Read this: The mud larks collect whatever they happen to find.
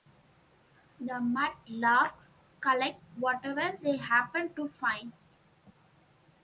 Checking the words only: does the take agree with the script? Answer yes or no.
yes